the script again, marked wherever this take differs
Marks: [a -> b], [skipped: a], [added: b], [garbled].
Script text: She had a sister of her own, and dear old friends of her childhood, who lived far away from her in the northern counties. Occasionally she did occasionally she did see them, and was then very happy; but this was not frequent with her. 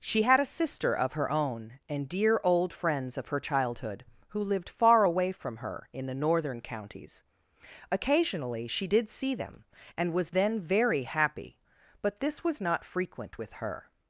She had a sister of her own, and dear old friends of her childhood, who lived far away from her in the northern counties. Occasionally she did [skipped: occasionally she did] see them, and was then very happy; but this was not frequent with her.